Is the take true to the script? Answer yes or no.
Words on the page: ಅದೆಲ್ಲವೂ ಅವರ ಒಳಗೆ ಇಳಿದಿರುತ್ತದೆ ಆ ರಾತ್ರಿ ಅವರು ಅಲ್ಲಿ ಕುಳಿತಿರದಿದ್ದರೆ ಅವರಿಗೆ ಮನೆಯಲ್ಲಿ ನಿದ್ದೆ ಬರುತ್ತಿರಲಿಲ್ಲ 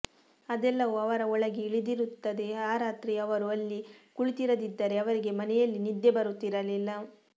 yes